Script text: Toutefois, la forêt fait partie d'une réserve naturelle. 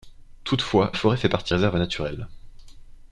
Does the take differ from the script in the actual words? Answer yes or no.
yes